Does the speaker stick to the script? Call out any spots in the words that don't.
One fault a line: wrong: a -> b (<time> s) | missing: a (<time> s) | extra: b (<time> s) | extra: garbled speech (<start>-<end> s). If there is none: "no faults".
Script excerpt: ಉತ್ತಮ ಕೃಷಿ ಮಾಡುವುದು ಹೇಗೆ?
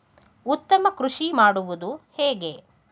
no faults